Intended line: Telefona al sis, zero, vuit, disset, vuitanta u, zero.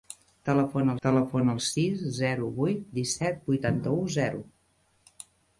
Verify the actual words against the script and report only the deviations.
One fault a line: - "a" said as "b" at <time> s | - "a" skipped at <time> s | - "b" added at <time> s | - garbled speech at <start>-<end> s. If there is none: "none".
- "telefona" added at 1.1 s